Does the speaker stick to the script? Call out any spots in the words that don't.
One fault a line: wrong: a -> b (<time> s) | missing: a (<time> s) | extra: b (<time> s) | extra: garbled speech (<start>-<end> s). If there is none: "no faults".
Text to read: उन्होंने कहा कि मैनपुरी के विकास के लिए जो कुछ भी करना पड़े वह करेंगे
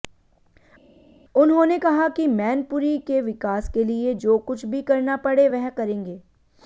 no faults